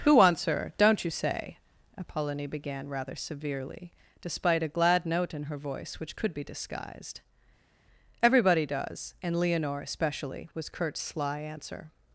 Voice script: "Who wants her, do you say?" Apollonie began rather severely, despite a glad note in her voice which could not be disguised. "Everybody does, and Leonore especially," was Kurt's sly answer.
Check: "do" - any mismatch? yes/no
yes